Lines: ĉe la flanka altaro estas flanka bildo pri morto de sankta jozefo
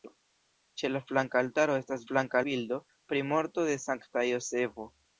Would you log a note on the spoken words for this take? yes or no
no